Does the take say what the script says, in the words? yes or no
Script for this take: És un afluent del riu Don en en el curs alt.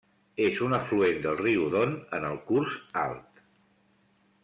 no